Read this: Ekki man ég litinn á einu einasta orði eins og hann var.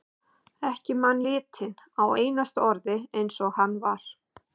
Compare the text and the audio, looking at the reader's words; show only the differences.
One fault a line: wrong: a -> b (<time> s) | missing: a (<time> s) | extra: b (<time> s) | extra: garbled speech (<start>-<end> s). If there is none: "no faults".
missing: ég (1.2 s)
missing: einu (2.0 s)